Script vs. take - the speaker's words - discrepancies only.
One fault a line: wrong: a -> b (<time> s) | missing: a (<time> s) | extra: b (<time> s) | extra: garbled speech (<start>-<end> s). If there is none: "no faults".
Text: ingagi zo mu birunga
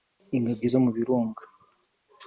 no faults